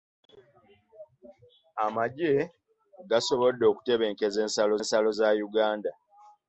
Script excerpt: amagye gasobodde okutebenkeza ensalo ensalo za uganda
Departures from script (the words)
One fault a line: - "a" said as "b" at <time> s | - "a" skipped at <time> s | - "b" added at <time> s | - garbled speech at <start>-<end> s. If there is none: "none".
none